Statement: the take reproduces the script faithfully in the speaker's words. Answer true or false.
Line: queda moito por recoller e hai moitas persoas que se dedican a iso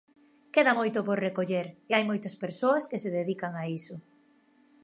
true